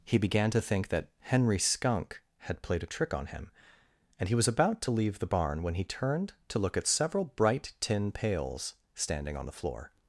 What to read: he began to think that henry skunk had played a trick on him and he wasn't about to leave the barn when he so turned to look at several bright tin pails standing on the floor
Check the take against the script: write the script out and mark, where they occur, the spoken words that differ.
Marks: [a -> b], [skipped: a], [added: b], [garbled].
he began to think that henry skunk had played a trick on him and he [wasn't -> was] about to leave the barn when he [skipped: so] turned to look at several bright tin pails standing on the floor